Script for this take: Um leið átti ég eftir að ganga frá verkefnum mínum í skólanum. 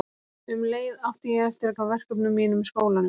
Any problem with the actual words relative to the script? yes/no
yes